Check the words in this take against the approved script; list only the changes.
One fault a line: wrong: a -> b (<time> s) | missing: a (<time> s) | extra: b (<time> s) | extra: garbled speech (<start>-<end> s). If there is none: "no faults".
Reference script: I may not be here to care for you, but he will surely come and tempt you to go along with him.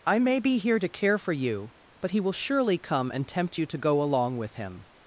missing: not (0.4 s)